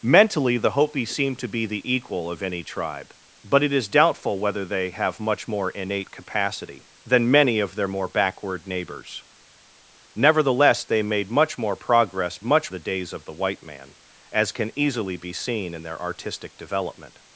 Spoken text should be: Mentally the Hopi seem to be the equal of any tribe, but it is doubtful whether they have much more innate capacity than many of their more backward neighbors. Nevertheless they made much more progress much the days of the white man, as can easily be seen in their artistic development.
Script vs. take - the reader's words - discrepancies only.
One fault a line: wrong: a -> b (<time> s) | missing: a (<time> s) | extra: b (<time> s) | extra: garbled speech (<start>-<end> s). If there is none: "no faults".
no faults